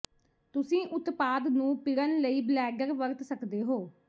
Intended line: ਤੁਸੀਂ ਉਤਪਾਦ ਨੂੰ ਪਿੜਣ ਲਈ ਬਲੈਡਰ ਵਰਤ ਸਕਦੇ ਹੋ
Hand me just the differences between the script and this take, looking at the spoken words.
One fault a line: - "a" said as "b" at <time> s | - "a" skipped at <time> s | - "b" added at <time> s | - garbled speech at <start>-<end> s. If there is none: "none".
none